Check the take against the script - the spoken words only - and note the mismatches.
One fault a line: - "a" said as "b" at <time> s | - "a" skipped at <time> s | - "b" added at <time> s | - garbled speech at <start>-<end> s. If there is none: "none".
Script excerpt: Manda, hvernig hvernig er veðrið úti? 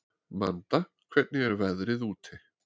- "hvernig" skipped at 1.4 s